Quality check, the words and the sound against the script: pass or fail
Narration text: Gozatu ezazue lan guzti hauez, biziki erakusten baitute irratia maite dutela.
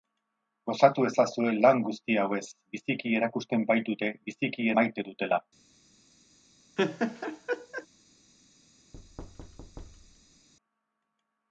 fail